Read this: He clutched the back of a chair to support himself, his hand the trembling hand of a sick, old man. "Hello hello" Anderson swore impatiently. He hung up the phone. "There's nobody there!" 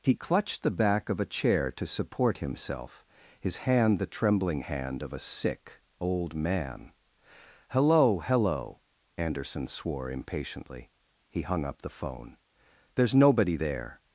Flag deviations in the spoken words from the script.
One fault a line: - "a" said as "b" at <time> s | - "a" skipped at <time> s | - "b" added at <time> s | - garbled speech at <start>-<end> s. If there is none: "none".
none